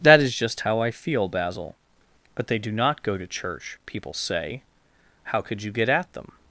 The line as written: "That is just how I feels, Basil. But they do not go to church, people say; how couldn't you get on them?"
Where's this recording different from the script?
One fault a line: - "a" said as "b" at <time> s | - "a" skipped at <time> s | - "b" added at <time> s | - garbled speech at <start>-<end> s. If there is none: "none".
- "feels" said as "feel" at 0.9 s
- "couldn't" said as "could" at 5.4 s
- "on" said as "at" at 5.9 s